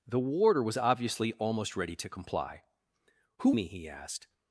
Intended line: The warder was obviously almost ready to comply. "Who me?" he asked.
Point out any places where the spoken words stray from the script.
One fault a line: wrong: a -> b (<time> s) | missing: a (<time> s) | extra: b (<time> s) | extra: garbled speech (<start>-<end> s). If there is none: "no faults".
no faults